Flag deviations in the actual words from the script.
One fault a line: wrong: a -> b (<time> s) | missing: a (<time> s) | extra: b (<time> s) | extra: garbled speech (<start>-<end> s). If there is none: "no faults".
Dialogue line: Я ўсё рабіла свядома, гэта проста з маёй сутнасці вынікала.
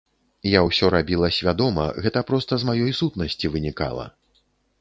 no faults